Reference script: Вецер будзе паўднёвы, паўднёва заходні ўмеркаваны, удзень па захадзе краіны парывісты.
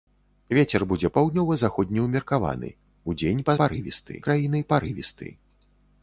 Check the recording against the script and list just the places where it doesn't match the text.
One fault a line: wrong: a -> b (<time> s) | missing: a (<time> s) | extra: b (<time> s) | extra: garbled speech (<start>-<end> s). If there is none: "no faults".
missing: паўднёвы (1.1 s)
wrong: захадзе -> парывісты (3.6 s)